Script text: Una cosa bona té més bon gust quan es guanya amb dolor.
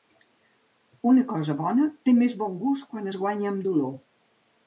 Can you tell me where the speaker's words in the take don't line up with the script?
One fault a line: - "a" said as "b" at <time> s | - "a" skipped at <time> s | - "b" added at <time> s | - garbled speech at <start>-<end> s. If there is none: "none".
none